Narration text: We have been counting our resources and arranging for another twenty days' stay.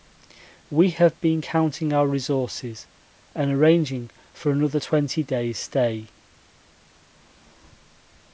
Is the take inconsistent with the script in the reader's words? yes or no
no